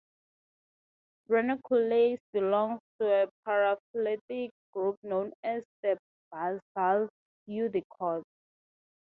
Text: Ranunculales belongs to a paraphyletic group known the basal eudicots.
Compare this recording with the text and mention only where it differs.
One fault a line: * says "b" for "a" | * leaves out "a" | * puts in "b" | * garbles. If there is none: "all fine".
* puts in "as"